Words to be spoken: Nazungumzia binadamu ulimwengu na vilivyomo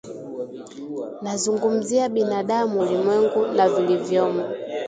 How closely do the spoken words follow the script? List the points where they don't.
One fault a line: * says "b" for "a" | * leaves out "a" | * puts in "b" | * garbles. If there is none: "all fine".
all fine